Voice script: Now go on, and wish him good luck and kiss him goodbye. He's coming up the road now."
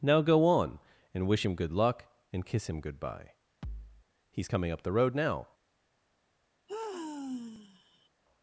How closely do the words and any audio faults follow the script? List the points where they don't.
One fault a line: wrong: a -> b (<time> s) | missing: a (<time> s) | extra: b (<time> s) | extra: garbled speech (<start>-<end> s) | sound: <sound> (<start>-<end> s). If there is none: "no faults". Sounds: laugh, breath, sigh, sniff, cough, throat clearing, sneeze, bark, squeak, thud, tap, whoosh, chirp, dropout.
sound: thud (3.6-4.1 s)
sound: sigh (6.7-8.1 s)